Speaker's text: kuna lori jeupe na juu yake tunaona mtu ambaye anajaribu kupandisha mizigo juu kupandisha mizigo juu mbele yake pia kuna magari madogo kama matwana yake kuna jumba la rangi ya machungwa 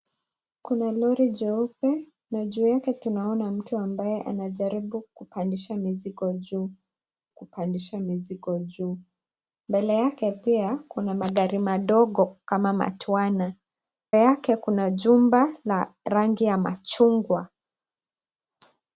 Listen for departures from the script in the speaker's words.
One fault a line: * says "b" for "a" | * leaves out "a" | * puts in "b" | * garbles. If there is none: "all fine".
all fine